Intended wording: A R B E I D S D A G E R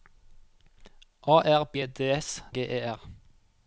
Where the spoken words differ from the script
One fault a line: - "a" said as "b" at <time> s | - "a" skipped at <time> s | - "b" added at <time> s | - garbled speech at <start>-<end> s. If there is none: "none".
- "E" skipped at 1.8 s
- "D A" skipped at 2.4 s